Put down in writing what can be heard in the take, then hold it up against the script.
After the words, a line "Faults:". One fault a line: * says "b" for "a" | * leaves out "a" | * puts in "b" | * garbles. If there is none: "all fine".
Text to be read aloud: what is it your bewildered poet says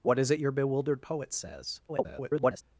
what is it your bewildered poet says [garbled]
Faults:
* garbles